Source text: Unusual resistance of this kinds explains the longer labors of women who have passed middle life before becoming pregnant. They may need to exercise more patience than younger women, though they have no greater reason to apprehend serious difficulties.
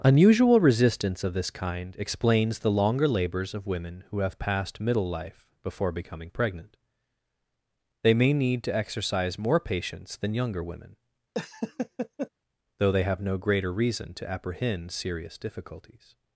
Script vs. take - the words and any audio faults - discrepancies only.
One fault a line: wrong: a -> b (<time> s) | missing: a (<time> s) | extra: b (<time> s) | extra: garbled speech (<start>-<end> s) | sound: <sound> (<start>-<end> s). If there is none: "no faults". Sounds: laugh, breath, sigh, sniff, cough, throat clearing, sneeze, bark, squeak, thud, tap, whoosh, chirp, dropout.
wrong: kinds -> kind (1.5 s)
sound: laugh (11.3-12.3 s)